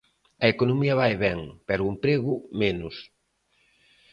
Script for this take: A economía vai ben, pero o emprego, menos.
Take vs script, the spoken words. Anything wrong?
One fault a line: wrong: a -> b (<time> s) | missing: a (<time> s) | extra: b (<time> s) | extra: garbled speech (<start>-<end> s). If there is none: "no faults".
no faults